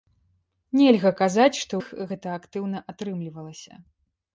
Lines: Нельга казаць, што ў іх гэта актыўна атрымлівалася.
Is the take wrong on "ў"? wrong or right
wrong